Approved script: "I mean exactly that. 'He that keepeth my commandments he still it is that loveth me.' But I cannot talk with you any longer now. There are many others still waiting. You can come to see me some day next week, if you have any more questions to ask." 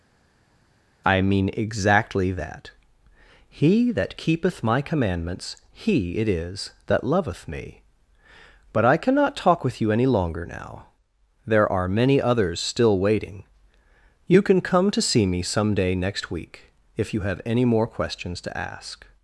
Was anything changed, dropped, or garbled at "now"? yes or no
no